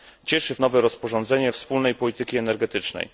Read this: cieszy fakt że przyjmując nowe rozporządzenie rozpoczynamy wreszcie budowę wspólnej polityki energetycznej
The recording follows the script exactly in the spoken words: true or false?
false